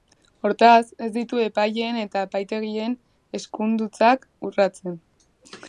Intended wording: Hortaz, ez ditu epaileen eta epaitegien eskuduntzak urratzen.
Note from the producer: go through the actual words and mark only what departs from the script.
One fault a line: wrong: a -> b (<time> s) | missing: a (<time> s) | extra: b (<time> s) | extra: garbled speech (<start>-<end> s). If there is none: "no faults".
no faults